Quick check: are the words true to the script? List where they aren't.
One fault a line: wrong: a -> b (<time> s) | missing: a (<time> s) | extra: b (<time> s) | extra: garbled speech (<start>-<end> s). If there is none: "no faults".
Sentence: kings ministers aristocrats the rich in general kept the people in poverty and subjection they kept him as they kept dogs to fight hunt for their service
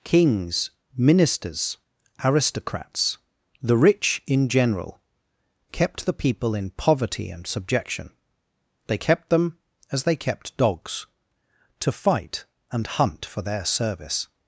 wrong: him -> them (9.3 s)
extra: and (12.7 s)